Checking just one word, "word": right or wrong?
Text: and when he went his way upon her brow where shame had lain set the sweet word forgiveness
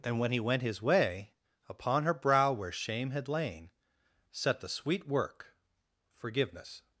wrong